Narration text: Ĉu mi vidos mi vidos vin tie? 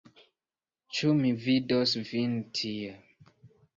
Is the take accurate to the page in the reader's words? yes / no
no